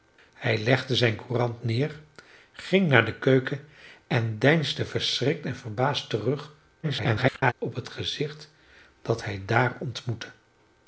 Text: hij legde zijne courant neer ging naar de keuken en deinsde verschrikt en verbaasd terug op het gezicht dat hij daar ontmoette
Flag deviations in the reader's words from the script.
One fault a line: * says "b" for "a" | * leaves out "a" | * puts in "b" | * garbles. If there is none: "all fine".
* garbles